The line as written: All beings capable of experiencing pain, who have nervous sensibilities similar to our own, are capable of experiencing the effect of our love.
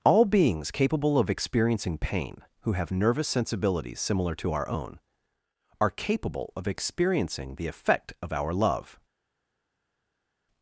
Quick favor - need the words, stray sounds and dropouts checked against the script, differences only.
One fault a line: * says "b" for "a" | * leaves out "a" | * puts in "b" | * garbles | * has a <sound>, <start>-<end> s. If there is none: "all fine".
all fine